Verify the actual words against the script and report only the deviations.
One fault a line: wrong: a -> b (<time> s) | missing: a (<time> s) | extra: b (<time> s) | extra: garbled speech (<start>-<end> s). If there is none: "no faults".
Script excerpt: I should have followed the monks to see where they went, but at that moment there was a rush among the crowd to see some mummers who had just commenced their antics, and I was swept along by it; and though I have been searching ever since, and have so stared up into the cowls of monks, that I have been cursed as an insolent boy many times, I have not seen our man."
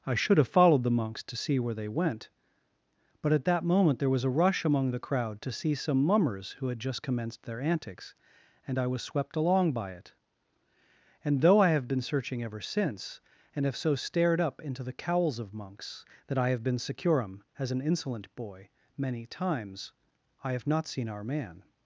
wrong: cursed -> securum (16.8 s)